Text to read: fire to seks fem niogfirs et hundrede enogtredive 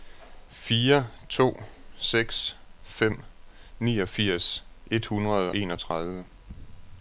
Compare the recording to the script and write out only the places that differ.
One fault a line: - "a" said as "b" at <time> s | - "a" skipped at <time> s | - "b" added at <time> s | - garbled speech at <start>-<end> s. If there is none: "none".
none